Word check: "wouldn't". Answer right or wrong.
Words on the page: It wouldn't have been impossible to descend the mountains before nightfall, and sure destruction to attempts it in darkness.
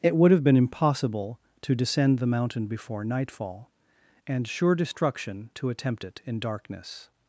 wrong